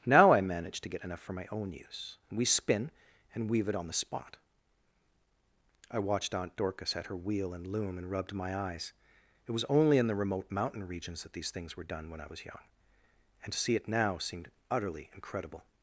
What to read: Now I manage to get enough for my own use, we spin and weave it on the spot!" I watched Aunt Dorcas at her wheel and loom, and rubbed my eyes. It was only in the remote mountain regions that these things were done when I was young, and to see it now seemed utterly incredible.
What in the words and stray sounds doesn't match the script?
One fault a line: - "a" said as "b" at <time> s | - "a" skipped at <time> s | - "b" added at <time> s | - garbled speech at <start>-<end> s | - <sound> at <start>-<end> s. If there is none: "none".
none